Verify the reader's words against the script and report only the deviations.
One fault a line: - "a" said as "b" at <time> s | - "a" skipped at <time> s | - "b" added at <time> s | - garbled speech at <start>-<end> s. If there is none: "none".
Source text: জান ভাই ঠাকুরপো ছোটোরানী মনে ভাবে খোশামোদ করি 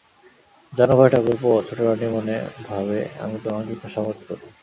- "আমি তোমাকে" added at 3.2 s